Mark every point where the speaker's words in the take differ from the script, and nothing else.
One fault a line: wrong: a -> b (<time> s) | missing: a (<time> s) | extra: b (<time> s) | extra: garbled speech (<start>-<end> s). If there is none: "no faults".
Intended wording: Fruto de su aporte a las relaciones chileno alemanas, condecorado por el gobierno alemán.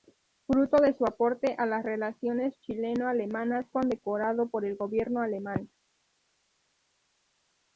no faults